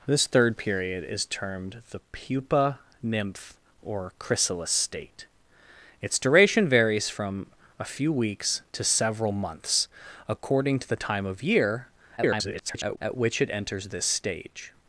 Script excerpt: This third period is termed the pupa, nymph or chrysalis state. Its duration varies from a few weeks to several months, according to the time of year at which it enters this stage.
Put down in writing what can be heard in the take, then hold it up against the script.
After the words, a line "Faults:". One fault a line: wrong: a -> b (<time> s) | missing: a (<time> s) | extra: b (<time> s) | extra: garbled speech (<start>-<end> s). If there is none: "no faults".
This third period is termed the pupa, nymph or chrysalis state. Its duration varies from a few weeks to several months, according to the time of year [garbled] at which it enters this stage.
Faults:
extra: garbled speech (12.2-13.0 s)